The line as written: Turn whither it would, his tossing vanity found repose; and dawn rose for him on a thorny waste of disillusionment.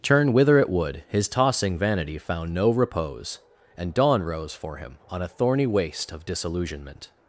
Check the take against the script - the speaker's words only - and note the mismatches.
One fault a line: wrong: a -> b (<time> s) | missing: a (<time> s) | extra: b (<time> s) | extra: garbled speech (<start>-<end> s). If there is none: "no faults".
extra: no (2.5 s)